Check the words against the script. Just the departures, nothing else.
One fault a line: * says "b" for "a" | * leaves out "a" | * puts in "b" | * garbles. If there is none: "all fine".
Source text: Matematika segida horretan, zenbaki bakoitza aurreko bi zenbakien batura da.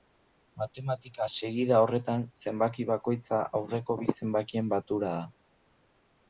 all fine